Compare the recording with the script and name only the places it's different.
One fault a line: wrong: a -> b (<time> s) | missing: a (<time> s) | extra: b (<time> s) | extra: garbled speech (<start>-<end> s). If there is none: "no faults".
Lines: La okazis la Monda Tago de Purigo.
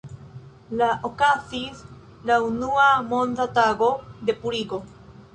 extra: unua (2.5 s)